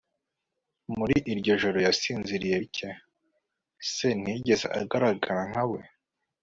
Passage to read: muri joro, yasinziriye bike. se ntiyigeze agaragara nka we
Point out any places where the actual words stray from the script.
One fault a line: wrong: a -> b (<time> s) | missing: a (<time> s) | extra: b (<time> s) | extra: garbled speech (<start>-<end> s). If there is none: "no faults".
extra: iryo (1.3 s)